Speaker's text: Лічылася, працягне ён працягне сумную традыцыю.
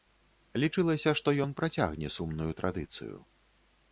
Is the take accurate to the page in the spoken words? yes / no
no